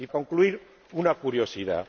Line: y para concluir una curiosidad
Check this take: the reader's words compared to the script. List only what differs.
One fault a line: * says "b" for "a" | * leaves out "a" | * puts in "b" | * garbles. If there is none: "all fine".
* leaves out "para"